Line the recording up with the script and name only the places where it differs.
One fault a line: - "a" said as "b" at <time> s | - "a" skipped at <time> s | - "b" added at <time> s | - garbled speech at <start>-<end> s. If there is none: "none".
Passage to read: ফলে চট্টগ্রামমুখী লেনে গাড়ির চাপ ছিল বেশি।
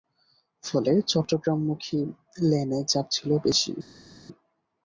- "গাড়ির" skipped at 2.8 s